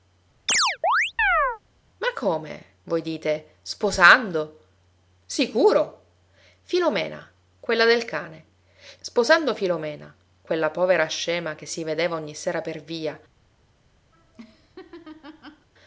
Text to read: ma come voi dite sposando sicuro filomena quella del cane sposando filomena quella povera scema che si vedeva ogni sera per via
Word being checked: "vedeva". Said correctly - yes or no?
yes